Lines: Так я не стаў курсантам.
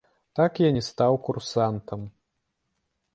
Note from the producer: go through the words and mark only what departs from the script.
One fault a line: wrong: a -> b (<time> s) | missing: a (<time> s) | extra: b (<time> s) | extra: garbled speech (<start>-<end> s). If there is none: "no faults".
no faults